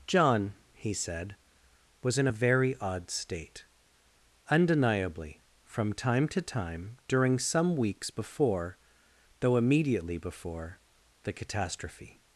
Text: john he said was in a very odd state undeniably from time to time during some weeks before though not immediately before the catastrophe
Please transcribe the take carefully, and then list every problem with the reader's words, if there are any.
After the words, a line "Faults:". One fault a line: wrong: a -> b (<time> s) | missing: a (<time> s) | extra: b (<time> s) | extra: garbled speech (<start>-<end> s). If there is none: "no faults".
john he said was in a very odd state undeniably from time to time during some weeks before though immediately before the catastrophe
Faults:
missing: not (9.6 s)